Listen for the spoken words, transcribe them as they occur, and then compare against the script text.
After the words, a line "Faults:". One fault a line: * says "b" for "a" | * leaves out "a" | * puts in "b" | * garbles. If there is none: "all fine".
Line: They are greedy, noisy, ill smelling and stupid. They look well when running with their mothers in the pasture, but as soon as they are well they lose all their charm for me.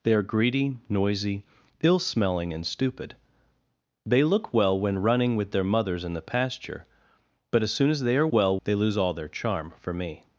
They are greedy, noisy, ill smelling and stupid. They look well when running with their mothers in the pasture, but as soon as they are well they lose all their charm for me.
Faults:
all fine